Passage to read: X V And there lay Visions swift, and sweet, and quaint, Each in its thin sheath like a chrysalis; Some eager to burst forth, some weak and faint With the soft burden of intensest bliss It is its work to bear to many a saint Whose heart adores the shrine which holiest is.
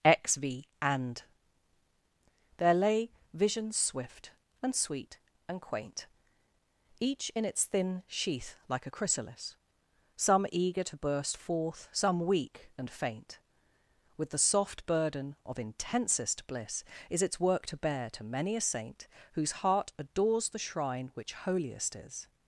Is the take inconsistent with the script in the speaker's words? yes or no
yes